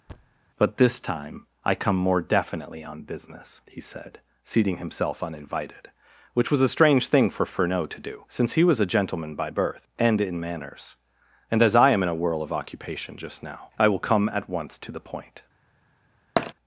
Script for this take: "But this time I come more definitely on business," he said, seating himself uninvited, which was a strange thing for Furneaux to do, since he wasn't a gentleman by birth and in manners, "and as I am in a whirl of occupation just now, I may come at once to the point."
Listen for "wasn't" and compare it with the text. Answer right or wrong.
wrong